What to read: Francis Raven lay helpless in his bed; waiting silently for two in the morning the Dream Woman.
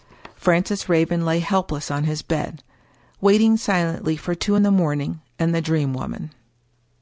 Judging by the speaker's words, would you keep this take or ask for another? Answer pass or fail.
fail